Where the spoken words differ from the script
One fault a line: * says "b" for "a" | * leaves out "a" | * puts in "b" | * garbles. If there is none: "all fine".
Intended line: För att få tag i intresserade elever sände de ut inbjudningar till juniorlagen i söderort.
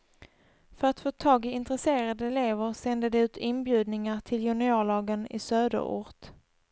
all fine